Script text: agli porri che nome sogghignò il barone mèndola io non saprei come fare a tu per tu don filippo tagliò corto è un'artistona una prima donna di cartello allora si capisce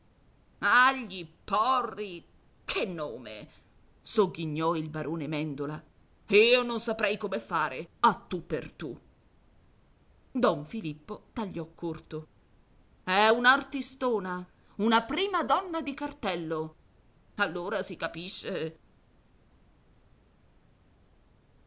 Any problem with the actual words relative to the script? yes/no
no